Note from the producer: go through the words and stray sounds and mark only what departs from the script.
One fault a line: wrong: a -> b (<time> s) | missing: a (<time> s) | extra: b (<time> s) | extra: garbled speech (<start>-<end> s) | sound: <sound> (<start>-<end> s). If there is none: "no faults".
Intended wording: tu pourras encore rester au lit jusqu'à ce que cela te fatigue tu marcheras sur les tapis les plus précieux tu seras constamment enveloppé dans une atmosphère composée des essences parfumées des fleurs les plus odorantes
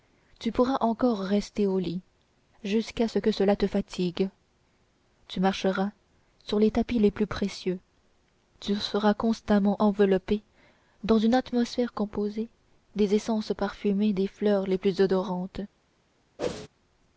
sound: whoosh (16.4-16.7 s)